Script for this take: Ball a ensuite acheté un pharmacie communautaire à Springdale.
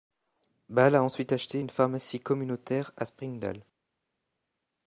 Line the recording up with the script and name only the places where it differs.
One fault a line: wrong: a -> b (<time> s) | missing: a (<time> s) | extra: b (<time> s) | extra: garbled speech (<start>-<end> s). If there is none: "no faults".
wrong: un -> une (1.6 s)